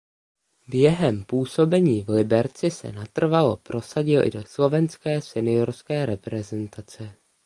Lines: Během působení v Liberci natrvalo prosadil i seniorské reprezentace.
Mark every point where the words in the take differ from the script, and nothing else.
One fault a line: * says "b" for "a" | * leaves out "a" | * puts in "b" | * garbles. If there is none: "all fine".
* puts in "se"
* puts in "do slovenské"